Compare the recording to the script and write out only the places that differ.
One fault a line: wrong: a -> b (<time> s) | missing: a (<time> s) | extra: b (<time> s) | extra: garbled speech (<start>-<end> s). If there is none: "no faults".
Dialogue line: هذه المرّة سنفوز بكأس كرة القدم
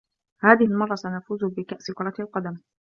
no faults